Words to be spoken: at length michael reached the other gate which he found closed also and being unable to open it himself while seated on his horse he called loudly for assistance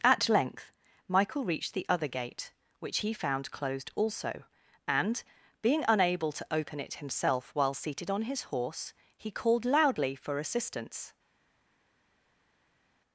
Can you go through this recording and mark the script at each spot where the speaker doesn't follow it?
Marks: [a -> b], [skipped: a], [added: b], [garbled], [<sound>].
at length michael reached the other gate which he found closed also and being unable to open it himself while seated on his horse he called loudly for assistance